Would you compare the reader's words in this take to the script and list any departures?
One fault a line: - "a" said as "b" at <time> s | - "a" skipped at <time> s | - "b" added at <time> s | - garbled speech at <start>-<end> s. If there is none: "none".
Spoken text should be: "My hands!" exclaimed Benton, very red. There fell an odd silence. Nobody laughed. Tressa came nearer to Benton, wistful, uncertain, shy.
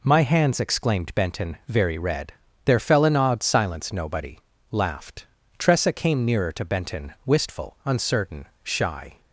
none